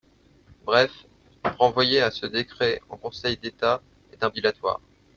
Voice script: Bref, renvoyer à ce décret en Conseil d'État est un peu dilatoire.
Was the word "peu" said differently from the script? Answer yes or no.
yes